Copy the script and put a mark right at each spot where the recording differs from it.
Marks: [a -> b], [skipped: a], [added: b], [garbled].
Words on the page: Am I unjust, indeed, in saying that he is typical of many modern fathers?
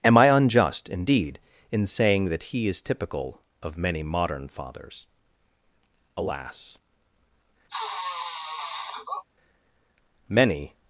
Am I unjust, indeed, in saying that he is typical of many modern fathers? [added: Alas many]